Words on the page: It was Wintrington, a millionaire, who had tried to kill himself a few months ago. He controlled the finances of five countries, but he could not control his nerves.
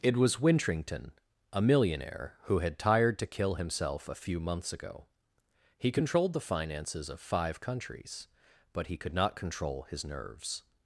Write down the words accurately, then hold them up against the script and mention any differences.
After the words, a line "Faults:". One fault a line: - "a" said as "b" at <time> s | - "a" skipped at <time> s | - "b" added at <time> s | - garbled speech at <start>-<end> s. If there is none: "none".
It was Wintrington, a millionaire, who had tired to kill himself a few months ago. He controlled the finances of five countries, but he could not control his nerves.
Faults:
- "tried" said as "tired" at 2.8 s